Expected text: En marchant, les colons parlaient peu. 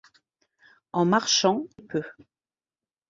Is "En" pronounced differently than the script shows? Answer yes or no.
no